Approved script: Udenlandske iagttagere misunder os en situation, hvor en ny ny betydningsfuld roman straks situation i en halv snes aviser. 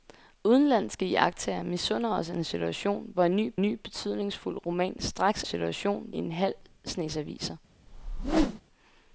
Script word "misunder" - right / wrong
right